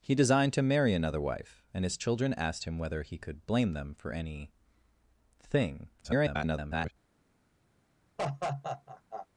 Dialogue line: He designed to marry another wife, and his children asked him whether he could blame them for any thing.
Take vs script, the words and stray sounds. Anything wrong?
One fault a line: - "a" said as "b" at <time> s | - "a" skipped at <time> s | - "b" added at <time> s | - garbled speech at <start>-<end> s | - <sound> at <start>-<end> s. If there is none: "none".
- garbled speech at 6.0-6.9 s
- laugh at 8.2-9.3 s